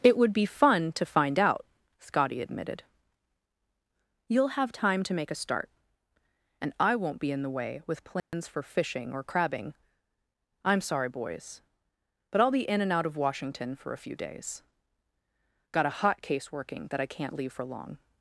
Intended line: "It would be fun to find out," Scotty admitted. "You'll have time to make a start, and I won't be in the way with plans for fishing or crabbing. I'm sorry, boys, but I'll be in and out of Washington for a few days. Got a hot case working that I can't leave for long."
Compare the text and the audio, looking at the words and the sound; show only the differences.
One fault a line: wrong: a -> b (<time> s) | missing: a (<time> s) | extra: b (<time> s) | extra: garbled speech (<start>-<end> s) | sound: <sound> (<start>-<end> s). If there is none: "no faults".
sound: dropout (8.2-8.3 s)